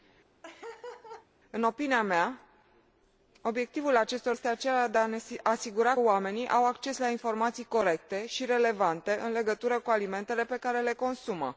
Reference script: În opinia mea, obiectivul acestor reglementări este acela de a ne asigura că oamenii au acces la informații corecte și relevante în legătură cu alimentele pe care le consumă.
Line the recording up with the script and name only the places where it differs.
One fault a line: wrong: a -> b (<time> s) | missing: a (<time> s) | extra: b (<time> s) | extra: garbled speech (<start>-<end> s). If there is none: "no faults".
missing: reglementări (4.4 s)
missing: că (6.0 s)